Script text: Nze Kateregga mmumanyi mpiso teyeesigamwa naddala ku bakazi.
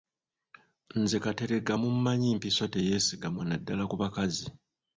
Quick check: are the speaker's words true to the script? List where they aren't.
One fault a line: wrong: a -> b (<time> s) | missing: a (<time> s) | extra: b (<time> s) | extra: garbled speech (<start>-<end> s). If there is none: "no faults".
no faults